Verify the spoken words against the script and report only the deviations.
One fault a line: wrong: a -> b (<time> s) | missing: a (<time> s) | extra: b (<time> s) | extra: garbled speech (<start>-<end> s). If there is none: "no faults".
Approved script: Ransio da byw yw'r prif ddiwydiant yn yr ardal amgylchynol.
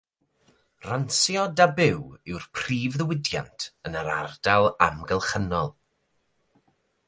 no faults